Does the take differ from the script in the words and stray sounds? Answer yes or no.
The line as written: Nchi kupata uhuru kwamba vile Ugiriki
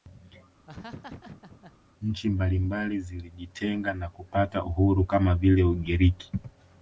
yes